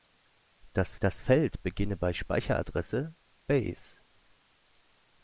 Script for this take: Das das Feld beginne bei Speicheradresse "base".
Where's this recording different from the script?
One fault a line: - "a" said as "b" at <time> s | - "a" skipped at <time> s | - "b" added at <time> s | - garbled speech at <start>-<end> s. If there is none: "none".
none